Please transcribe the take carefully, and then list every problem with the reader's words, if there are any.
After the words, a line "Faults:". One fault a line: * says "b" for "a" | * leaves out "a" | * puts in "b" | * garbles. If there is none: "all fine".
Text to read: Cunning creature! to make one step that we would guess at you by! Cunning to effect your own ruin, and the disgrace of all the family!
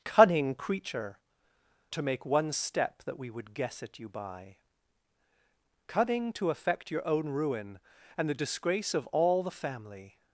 Cunning creature! to make one step that we would guess at you by! Cunning to effect your own ruin, and the disgrace of all the family!
Faults:
all fine